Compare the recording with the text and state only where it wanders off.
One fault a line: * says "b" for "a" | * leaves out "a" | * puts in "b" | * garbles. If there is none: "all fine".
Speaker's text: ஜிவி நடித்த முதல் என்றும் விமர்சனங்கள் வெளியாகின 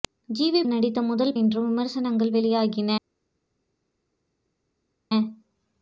all fine